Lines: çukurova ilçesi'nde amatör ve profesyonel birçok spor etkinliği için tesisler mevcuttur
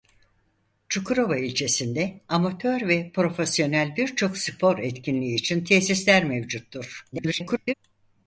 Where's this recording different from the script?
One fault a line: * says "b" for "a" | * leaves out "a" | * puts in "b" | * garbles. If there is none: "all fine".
* garbles